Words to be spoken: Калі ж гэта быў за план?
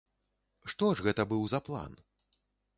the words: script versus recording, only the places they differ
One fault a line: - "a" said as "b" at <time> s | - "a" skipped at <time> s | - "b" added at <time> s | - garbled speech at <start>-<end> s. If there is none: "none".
- "Калі" said as "Што" at 0.7 s